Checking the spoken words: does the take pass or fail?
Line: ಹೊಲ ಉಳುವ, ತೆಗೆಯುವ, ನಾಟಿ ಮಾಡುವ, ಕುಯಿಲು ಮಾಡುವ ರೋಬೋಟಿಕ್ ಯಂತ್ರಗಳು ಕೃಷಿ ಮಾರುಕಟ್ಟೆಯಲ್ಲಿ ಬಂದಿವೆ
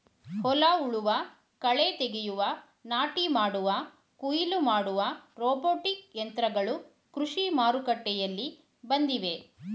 fail